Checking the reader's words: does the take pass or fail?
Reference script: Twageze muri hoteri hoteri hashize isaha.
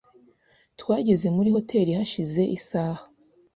fail